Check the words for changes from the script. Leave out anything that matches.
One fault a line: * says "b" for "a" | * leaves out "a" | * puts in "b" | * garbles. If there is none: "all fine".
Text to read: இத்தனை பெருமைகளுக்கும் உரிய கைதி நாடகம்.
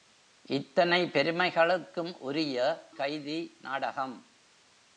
all fine